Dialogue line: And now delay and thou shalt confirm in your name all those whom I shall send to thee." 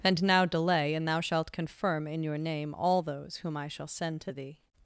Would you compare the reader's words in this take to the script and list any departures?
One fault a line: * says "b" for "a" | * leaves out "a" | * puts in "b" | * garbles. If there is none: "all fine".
all fine